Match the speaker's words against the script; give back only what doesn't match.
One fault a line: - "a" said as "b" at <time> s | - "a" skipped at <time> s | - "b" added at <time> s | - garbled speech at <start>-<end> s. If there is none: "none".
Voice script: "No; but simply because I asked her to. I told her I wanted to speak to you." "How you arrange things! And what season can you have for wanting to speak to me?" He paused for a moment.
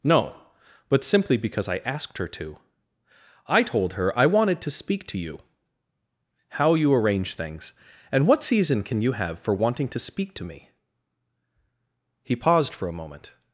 none